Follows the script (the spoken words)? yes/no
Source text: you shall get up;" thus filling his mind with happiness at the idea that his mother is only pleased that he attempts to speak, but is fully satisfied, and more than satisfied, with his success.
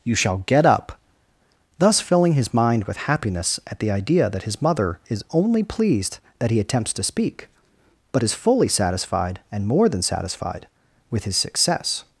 yes